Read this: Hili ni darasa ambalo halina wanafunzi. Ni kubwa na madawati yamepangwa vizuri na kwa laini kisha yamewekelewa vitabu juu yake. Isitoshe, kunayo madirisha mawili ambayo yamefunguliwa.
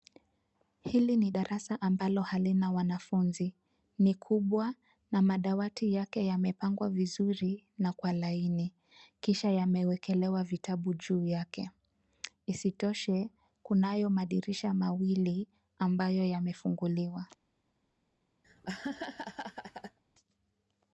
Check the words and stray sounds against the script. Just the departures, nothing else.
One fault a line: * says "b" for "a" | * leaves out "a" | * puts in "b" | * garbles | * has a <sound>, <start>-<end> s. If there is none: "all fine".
* puts in "yake"
* has a laugh, 18.4-20.0 s